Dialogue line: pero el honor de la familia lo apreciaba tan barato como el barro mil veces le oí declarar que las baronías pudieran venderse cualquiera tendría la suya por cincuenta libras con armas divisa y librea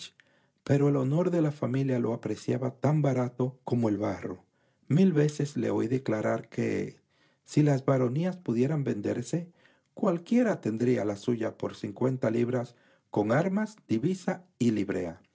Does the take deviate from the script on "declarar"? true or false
false